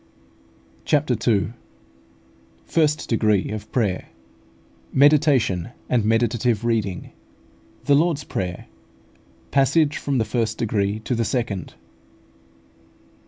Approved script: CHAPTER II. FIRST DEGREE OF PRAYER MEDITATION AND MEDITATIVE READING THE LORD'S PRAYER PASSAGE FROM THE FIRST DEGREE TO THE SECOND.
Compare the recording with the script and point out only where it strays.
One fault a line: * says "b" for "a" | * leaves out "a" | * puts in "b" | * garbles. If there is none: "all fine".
all fine